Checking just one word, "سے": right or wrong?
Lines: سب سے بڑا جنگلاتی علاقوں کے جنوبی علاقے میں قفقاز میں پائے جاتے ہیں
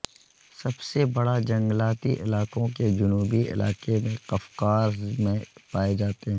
right